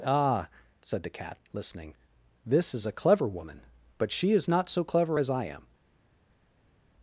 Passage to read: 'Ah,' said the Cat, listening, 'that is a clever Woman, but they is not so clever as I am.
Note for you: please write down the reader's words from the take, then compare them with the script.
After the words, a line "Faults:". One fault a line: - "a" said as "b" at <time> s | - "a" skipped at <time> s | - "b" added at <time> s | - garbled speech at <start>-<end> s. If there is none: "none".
'Ah,' said the Cat, listening, 'this is a clever Woman, but she is not so clever as I am.
Faults:
- "that" said as "this" at 2.5 s
- "they" said as "she" at 4.1 s